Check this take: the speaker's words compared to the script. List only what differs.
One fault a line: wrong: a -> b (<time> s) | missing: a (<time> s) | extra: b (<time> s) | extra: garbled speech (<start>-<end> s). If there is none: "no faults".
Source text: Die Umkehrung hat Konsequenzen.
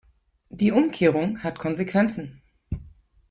no faults